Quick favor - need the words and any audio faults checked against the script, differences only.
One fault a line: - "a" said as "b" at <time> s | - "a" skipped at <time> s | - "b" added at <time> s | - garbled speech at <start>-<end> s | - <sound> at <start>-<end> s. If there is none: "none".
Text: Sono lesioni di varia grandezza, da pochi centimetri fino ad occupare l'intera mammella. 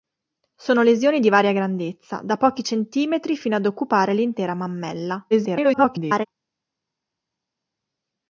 - garbled speech at 5.3-6.3 s